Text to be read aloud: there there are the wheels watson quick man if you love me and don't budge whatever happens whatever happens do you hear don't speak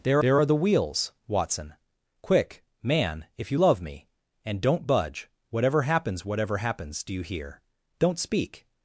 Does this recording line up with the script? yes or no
yes